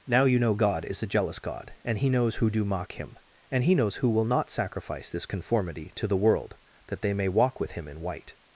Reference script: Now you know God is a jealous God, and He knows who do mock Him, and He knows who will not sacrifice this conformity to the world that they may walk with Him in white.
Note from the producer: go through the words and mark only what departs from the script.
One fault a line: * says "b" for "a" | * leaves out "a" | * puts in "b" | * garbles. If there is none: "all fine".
all fine